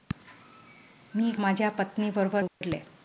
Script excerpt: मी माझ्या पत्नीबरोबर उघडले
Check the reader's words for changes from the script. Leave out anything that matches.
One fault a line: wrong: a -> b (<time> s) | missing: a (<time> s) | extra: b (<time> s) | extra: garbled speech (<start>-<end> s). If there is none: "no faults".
no faults